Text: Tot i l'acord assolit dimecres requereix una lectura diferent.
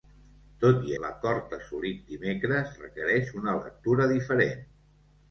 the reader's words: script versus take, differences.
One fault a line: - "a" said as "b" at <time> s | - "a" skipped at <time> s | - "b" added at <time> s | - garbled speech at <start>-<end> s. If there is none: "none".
none